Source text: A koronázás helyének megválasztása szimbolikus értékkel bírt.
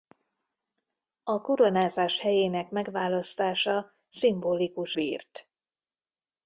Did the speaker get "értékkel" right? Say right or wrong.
wrong